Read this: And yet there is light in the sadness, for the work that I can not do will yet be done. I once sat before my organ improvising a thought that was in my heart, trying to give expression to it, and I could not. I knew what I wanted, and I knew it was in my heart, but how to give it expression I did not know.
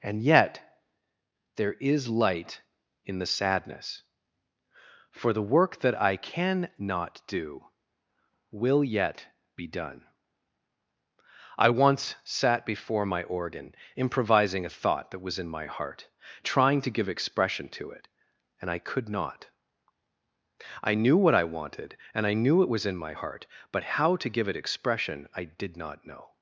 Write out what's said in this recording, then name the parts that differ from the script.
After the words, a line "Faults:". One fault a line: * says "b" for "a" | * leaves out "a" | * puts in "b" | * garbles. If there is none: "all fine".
And yet there is light in the sadness, for the work that I can not do will yet be done. I once sat before my organ improvising a thought that was in my heart, trying to give expression to it, and I could not. I knew what I wanted, and I knew it was in my heart, but how to give it expression I did not know.
Faults:
all fine